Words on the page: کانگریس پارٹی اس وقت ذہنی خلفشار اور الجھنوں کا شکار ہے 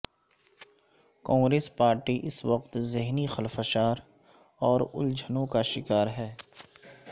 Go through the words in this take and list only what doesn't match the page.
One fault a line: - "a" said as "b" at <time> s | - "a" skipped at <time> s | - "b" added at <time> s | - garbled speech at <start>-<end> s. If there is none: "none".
none